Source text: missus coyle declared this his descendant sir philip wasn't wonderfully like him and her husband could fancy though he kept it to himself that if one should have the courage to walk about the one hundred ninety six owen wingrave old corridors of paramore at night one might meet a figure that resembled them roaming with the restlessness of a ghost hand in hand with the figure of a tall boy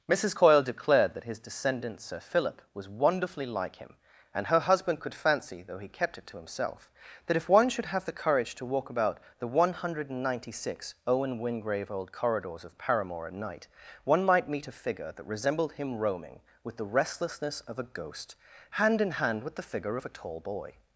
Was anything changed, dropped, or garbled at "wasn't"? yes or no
yes